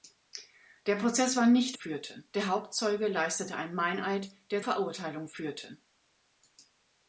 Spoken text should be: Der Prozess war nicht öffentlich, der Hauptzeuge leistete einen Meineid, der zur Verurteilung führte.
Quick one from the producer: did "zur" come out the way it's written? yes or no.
no